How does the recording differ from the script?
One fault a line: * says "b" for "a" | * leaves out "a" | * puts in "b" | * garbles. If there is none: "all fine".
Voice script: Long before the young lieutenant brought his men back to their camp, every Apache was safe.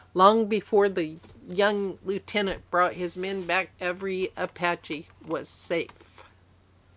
* leaves out "to their camp"